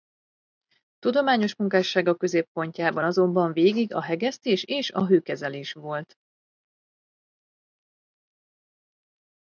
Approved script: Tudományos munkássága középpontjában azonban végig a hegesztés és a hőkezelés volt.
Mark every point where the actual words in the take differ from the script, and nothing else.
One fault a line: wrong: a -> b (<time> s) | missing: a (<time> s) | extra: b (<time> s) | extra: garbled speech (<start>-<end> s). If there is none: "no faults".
no faults